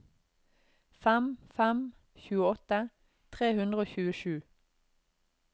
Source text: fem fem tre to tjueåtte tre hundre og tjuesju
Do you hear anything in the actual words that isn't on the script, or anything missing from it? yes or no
yes